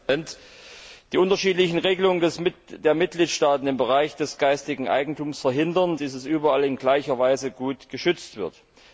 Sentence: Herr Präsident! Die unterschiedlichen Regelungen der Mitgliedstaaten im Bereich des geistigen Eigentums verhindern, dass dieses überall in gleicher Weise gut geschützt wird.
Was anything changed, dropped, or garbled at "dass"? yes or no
yes